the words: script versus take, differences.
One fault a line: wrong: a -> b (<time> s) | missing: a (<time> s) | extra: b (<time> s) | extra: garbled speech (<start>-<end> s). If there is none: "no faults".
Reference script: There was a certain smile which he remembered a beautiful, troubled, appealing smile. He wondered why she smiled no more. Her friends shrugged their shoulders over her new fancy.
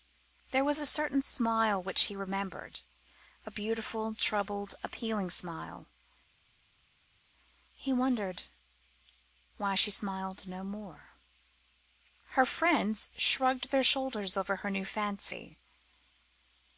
no faults